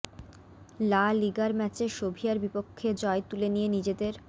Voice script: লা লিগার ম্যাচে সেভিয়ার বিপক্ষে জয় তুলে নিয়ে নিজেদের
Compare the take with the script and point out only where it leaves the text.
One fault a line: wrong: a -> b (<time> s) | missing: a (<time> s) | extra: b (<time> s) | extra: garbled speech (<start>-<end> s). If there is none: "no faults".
no faults